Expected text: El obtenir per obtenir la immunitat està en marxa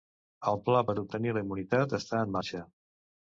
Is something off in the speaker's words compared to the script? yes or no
yes